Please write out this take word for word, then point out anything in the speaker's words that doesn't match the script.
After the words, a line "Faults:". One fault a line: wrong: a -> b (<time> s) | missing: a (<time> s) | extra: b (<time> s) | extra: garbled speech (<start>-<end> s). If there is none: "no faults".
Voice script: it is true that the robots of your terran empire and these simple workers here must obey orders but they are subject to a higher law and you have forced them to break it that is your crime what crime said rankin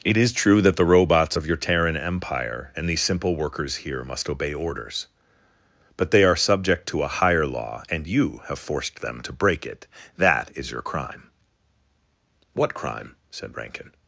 it is true that the robots of your terran empire and these simple workers here must obey orders but they are subject to a higher law and you have forced them to break it that is your crime what crime said rankin
Faults:
no faults